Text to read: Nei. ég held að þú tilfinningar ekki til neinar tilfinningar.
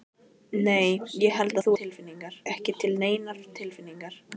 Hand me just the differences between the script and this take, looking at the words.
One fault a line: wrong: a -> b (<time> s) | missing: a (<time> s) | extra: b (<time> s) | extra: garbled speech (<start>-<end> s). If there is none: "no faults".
no faults